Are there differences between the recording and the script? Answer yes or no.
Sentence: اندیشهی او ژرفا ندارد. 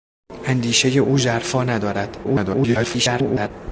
yes